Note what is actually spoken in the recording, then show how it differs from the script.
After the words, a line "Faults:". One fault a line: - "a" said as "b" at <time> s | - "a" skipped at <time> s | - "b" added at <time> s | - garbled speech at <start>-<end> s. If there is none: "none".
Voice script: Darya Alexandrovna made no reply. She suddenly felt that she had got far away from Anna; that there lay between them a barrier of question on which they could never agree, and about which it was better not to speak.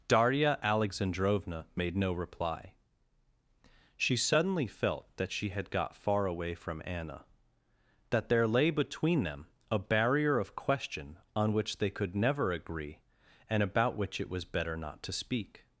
Darya Alexandrovna made no reply. She suddenly felt that she had got far away from Anna; that there lay between them a barrier of question on which they could never agree, and about which it was better not to speak.
Faults:
none